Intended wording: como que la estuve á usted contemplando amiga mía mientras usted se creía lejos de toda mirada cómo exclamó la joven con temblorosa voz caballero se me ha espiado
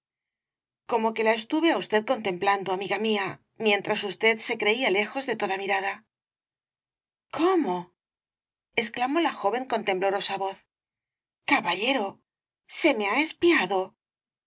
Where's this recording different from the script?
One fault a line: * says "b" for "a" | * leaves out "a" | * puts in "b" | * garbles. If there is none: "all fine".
all fine